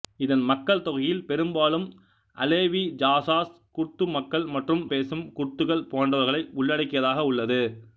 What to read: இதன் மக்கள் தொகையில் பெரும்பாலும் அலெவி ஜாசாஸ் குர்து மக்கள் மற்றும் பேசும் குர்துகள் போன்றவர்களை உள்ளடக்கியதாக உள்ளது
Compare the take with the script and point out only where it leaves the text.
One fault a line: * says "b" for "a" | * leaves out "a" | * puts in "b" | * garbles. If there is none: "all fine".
all fine